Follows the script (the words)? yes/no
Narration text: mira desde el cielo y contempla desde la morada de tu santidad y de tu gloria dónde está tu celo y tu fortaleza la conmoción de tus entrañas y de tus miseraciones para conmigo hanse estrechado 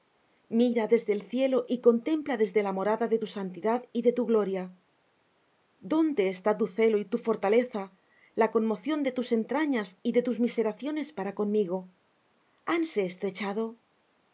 yes